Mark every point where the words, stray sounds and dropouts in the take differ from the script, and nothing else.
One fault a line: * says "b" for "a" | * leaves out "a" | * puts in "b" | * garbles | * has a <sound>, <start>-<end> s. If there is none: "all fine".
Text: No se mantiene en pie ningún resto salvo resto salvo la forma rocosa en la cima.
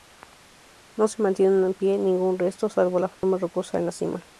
* leaves out "resto salvo"
* has a dropout, 3.1-3.2 s